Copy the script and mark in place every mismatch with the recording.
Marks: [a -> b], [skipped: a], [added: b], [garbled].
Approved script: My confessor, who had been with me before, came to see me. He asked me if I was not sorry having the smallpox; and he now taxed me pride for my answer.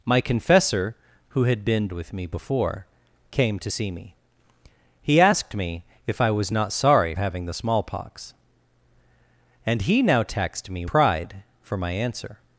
My confessor, who had been with me before, came to see me. He asked me if I was not sorry having the smallpox; and he now taxed me pride for my answer.